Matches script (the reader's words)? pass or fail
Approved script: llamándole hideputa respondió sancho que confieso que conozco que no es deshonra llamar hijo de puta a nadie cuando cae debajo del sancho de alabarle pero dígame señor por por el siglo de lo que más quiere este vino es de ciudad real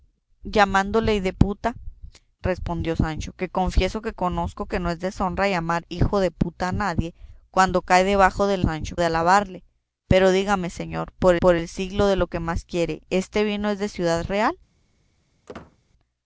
pass